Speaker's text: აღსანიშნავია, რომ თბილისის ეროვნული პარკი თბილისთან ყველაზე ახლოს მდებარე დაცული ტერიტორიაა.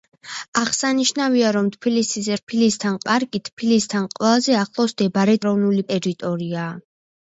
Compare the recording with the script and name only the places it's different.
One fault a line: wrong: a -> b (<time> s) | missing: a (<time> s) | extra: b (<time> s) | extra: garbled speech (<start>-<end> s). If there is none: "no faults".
wrong: ეროვნული -> თბილისთან (2.4 s)
wrong: დაცული -> ეროვნული (5.4 s)